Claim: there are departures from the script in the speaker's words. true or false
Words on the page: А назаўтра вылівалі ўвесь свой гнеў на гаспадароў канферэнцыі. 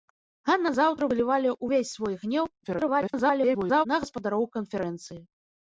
true